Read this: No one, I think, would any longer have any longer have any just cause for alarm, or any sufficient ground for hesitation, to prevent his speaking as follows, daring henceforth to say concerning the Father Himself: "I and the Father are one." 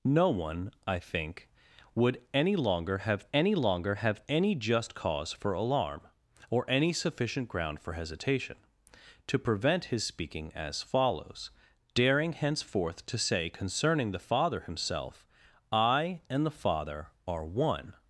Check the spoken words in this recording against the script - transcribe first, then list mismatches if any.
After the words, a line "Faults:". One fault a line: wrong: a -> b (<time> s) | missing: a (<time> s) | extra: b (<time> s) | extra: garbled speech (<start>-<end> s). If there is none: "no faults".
No one, I think, would any longer have any longer have any just cause for alarm, or any sufficient ground for hesitation, to prevent his speaking as follows, daring henceforth to say concerning the Father Himself: "I and the Father are one."
Faults:
no faults